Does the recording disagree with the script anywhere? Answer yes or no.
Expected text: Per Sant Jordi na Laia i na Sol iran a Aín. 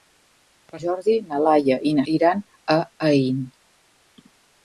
yes